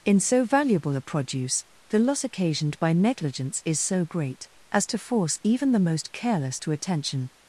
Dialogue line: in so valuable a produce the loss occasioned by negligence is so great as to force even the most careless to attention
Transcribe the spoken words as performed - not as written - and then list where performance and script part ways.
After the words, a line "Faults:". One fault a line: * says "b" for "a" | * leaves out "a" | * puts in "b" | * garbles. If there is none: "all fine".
in so valuable a produce the loss occasioned by negligence is so great as to force even the most careless to attention
Faults:
all fine